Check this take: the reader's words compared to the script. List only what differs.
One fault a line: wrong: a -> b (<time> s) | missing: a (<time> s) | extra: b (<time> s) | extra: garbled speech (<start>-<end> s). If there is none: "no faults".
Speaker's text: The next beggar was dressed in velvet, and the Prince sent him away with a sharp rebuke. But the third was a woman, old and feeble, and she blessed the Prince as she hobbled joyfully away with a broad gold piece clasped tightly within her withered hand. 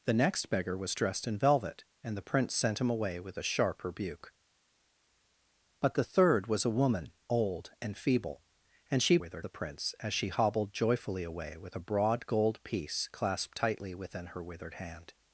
wrong: blessed -> withered (9.2 s)